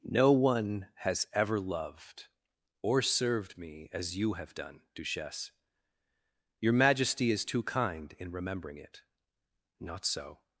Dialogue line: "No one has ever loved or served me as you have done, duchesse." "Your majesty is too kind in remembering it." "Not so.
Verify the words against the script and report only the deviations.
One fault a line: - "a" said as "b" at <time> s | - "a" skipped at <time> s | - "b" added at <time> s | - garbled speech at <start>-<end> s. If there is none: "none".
none